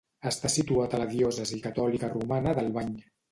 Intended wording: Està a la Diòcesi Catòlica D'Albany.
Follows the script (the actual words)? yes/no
no